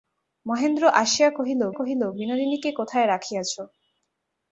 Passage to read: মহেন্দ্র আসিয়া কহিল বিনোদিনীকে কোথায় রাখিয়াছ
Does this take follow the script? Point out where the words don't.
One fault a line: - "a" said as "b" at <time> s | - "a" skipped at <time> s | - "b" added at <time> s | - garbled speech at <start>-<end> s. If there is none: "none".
- "কহিল" added at 1.7 s